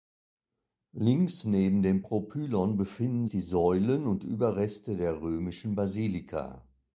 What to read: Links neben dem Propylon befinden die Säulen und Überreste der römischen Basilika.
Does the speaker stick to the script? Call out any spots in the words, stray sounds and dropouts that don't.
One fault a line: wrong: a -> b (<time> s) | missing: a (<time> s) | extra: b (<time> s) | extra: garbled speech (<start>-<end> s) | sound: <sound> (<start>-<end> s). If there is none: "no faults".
no faults